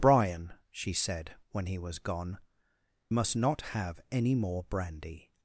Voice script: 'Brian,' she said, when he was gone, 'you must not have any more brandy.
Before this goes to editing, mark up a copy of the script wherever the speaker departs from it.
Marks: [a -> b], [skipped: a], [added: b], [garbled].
'Brian,' she said, when he was gone, [skipped: 'you] must not have any more brandy.